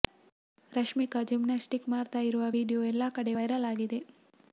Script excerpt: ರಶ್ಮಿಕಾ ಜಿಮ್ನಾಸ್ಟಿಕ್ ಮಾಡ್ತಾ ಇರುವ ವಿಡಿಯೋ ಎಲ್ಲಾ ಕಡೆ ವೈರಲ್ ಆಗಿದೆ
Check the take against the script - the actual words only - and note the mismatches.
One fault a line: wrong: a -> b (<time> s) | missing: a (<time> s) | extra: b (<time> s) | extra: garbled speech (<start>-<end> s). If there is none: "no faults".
no faults